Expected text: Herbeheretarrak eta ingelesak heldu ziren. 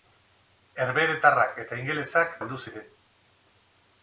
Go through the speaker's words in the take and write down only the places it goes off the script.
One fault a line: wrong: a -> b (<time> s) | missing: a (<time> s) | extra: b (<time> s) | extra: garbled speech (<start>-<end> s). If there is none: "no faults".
no faults